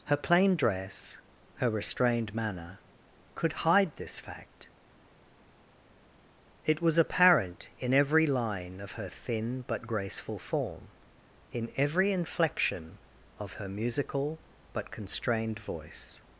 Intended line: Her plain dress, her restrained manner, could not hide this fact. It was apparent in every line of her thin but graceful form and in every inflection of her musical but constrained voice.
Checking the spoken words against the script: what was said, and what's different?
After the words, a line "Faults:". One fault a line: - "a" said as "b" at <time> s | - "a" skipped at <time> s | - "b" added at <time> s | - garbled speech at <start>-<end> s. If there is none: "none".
Her plain dress, her restrained manner, could hide this fact. It was apparent in every line of her thin but graceful form in every inflection of her musical but constrained voice.
Faults:
- "not" skipped at 3.5 s
- "and" skipped at 10.9 s